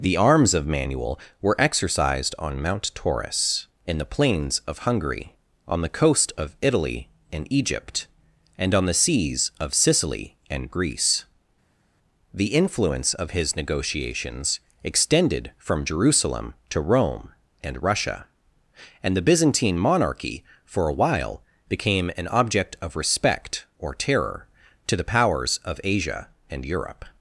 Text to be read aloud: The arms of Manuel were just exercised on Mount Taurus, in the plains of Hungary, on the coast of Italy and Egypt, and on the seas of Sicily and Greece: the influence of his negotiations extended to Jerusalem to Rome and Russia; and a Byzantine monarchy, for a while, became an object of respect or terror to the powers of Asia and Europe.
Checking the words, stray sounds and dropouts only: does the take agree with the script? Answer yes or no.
no